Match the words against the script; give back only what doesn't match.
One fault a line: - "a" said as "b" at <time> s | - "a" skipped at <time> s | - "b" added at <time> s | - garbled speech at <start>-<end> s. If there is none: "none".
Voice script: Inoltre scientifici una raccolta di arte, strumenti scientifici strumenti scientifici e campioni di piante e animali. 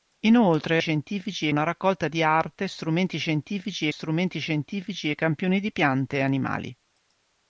none